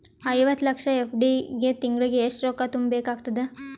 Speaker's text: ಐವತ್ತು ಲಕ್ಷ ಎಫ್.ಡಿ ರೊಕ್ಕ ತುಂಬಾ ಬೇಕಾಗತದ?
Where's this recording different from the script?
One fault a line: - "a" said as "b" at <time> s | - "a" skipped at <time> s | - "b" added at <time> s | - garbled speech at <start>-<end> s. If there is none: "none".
- "ಗೆ ತಿಂಗಳಿಗೆ ಎಷ್ಟು" added at 1.6 s